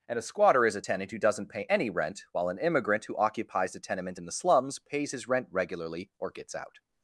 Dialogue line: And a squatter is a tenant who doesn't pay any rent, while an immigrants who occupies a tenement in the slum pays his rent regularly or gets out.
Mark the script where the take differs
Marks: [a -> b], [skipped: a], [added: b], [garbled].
And a squatter is a tenant who doesn't pay any rent, while an [immigrants -> immigrant] who occupies a tenement in the [slum -> slums] pays his rent regularly or gets out.